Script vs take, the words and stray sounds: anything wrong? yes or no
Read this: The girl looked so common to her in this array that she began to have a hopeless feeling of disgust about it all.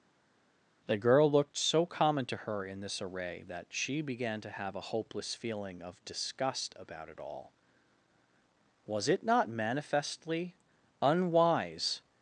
yes